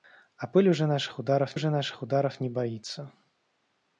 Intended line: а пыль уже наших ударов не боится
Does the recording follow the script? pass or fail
fail